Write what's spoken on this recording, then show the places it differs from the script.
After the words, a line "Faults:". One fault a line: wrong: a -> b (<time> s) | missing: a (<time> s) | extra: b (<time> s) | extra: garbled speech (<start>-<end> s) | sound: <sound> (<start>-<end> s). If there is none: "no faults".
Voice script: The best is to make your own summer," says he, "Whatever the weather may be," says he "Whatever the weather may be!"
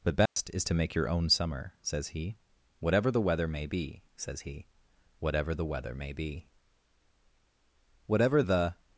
The best is to make your own summer," says he, "Whatever the weather may be," says he "Whatever the weather may be!" "Whatever the
Faults:
sound: dropout (0.3-0.4 s)
extra: Whatever the (8.1 s)